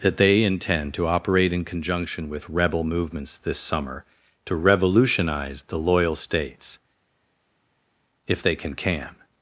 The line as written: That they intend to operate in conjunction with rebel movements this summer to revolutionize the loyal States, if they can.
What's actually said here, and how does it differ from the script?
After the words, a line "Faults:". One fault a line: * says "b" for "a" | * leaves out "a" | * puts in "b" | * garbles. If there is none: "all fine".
That they intend to operate in conjunction with rebel movements this summer to revolutionize the loyal States, if they can can.
Faults:
* puts in "can"